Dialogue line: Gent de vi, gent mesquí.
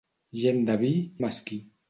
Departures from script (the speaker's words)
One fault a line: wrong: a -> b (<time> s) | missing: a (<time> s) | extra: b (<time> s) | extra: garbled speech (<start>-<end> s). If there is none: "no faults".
missing: gent (0.9 s)